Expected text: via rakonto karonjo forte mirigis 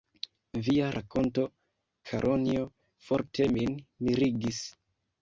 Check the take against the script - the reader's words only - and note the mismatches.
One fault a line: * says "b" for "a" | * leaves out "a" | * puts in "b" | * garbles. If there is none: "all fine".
* puts in "min"